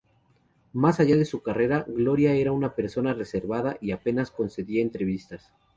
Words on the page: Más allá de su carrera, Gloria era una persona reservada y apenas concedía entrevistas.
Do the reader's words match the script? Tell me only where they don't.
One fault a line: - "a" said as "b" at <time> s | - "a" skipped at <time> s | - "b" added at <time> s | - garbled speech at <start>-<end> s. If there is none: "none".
none